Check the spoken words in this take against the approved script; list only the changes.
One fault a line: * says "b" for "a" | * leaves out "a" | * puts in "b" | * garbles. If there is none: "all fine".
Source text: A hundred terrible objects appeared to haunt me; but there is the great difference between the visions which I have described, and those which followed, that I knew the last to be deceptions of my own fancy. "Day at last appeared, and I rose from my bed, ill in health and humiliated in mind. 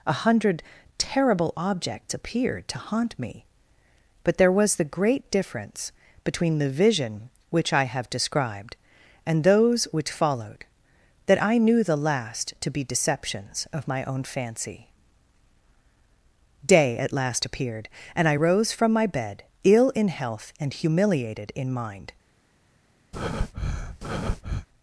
* says "was" for "is"
* says "vision" for "visions"